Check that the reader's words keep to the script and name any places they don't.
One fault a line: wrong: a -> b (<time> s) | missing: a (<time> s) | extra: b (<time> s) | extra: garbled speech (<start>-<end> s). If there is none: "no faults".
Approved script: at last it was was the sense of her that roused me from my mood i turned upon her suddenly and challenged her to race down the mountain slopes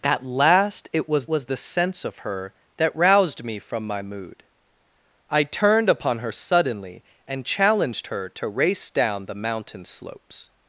no faults